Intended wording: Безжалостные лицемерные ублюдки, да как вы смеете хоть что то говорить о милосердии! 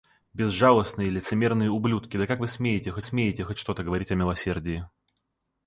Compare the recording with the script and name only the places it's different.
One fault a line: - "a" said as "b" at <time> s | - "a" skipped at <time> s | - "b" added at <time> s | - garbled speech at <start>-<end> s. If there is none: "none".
- "смеете хоть" added at 3.0 s